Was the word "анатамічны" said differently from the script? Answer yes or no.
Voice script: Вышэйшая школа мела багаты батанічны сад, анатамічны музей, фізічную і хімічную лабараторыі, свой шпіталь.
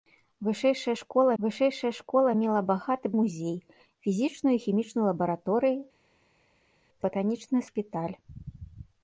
yes